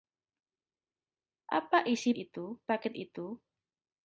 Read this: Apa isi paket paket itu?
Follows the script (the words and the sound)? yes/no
no